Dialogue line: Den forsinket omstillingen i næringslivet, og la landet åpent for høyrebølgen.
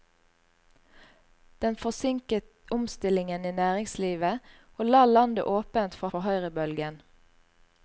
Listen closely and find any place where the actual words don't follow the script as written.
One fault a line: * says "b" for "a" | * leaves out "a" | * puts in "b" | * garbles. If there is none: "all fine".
* puts in "for"